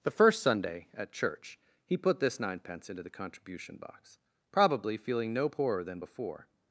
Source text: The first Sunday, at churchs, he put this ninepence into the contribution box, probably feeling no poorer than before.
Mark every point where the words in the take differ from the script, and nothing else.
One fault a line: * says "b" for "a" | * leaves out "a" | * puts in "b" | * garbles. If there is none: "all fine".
* says "church" for "churchs"